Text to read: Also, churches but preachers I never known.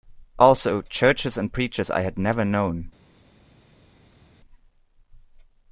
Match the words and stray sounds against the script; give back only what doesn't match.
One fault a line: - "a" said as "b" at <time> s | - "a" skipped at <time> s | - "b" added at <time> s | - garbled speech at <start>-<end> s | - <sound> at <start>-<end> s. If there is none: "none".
- "but" said as "and" at 1.4 s
- "had" added at 2.0 s